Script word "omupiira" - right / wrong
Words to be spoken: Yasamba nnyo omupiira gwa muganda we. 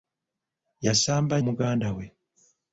wrong